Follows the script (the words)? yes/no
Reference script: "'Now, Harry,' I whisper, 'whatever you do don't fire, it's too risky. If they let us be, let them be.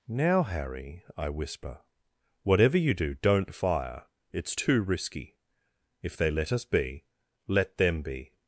yes